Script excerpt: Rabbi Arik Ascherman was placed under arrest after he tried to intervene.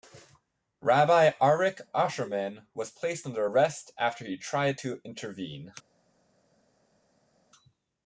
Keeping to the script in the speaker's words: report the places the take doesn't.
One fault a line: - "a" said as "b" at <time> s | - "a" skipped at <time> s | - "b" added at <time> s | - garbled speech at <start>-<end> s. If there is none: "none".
none